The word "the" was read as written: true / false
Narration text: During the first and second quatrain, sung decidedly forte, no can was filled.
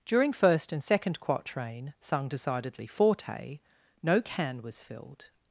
false